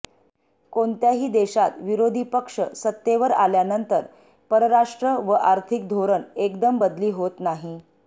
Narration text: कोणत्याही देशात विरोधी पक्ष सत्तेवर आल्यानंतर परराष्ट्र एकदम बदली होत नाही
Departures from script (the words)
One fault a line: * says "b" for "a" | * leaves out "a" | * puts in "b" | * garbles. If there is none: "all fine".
* puts in "व आर्थिक धोरण"